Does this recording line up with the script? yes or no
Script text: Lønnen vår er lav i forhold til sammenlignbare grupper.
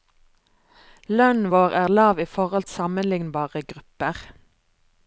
no